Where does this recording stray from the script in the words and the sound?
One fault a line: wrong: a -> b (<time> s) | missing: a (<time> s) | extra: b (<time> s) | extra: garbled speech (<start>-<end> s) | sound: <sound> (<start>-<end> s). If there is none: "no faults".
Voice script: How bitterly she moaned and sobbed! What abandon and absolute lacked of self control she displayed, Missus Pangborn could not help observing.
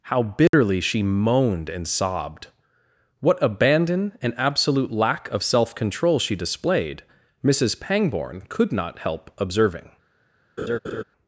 sound: dropout (0.5-0.5 s)
wrong: lacked -> lack (4.9 s)
sound: laugh (10.6-11.0 s)